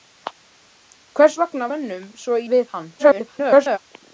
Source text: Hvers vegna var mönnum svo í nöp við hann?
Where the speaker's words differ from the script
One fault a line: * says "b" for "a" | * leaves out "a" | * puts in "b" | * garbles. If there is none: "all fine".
* leaves out "var"
* leaves out "í nöp"
* garbles